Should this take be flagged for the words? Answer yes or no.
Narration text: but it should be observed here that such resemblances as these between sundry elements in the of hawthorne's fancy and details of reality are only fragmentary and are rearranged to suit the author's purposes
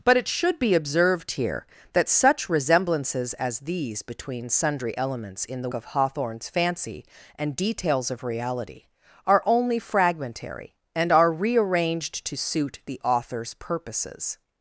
no